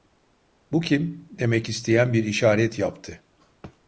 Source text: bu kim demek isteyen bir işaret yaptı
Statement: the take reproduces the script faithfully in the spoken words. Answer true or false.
true